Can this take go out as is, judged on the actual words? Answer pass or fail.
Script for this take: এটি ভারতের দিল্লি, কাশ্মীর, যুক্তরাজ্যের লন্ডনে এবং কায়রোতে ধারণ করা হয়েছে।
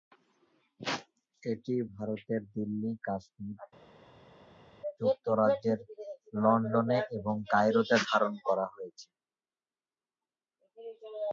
pass